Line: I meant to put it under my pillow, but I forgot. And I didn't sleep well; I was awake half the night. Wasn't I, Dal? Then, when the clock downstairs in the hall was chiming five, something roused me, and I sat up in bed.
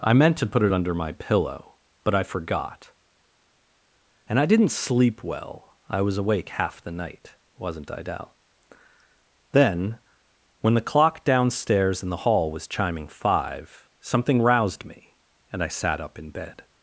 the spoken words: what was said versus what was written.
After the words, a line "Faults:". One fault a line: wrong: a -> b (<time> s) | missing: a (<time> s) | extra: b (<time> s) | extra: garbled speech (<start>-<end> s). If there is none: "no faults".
I meant to put it under my pillow, but I forgot. And I didn't sleep well; I was awake half the night. Wasn't I, Dal? Then, when the clock downstairs in the hall was chiming five, something roused me, and I sat up in bed.
Faults:
no faults